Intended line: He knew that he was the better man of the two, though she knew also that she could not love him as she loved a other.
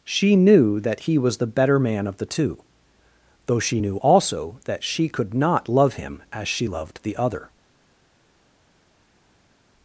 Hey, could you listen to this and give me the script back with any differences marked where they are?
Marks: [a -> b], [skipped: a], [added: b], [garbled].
[He -> She] knew that he was the better man of the two, though she knew also that she could not love him as she loved [a -> the] other.